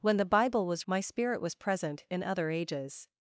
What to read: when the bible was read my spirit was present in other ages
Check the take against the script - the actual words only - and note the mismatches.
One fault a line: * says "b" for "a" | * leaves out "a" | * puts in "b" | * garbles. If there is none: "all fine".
* leaves out "read"